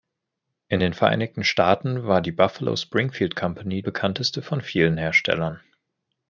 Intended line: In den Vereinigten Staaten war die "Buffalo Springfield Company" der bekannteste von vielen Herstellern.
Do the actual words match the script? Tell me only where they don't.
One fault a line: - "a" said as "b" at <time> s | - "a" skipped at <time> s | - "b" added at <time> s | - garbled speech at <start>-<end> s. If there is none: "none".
- "der" skipped at 3.8 s